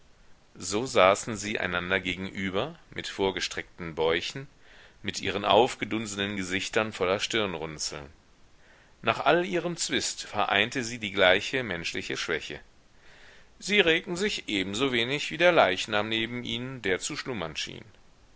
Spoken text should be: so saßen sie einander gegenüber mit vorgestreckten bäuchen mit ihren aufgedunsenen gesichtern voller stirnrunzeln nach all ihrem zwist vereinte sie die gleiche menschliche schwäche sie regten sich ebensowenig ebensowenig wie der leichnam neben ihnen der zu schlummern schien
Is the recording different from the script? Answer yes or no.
yes